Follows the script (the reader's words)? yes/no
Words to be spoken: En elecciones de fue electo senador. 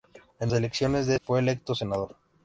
yes